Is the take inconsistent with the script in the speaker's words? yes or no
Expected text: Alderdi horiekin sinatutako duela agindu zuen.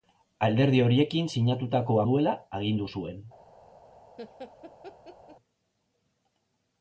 no